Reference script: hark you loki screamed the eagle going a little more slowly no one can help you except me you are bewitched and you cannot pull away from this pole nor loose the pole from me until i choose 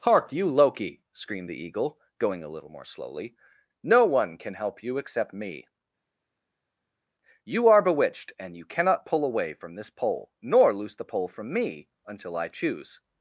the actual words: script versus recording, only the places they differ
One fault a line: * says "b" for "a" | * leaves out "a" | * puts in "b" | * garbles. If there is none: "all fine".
all fine